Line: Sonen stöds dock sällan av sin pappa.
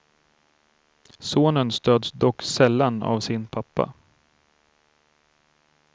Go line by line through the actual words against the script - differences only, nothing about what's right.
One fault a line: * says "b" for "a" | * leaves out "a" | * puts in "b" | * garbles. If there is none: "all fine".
all fine